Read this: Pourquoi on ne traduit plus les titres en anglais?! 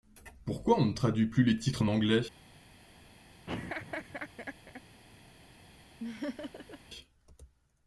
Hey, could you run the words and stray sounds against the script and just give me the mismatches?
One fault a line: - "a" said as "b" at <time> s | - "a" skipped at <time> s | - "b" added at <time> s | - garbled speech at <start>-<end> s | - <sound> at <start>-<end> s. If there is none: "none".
- laugh at 3.5-4.8 s
- laugh at 6.0-6.8 s